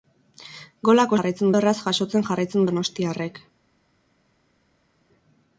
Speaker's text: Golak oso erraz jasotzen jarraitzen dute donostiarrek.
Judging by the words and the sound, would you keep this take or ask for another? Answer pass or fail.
fail